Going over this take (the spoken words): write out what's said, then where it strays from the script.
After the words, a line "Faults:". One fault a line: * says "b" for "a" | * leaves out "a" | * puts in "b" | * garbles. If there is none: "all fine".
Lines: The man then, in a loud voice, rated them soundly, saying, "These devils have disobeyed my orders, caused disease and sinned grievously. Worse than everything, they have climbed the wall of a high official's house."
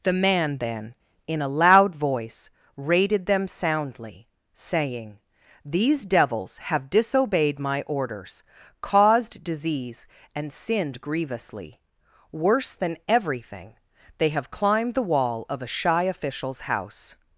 The man then, in a loud voice, rated them soundly, saying, "These devils have disobeyed my orders, caused disease and sinned grievously. Worse than everything, they have climbed the wall of a shy official's house."
Faults:
* says "shy" for "high"